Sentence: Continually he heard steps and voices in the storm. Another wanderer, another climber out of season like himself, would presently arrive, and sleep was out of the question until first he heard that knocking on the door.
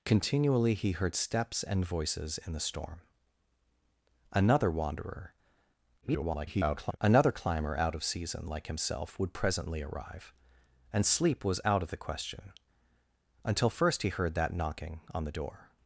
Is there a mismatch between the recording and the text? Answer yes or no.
yes